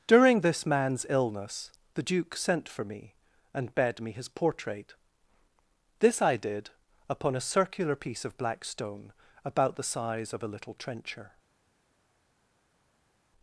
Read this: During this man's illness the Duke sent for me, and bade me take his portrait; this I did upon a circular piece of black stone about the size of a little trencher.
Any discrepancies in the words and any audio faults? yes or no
yes